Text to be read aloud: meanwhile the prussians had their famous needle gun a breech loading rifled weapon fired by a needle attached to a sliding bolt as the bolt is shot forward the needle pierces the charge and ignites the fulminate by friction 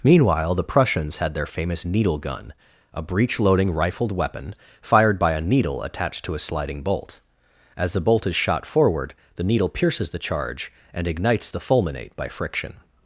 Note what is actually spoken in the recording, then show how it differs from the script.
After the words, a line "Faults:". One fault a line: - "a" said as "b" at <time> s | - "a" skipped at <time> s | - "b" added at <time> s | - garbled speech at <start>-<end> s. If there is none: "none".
meanwhile the prussians had their famous needle gun a breech loading rifled weapon fired by a needle attached to a sliding bolt as the bolt is shot forward the needle pierces the charge and ignites the fulminate by friction
Faults:
none